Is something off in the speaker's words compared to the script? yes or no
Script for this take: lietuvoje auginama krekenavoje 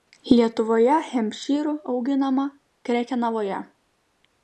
yes